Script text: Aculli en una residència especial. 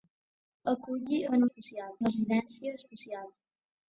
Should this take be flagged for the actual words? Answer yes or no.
yes